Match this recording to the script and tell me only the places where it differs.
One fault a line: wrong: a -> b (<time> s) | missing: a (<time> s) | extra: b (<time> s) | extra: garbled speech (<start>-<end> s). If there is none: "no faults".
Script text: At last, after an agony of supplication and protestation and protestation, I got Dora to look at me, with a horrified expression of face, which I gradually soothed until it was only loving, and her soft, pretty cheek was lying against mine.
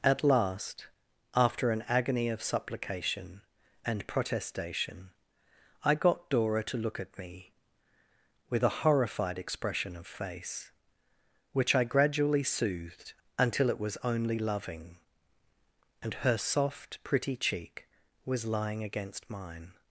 missing: and protestation (5.1 s)